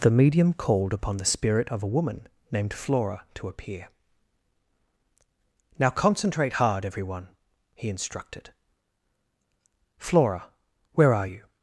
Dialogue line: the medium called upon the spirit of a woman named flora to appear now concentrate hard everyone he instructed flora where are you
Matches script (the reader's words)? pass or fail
pass